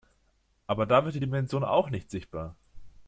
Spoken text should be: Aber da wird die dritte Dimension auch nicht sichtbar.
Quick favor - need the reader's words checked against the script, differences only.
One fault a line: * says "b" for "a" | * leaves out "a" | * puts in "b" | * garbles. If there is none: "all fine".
* leaves out "dritte"